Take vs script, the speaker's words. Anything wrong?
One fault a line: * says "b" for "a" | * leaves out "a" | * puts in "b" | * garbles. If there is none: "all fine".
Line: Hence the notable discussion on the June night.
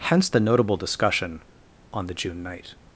all fine